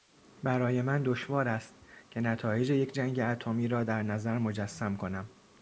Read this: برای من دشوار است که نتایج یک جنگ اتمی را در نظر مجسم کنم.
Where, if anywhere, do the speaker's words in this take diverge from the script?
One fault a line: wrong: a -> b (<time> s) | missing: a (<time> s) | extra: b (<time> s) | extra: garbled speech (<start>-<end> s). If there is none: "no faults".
no faults